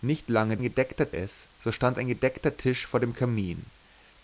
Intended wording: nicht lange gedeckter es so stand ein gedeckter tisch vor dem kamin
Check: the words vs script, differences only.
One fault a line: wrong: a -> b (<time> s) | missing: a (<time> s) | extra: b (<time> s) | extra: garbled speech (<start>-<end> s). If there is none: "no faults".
no faults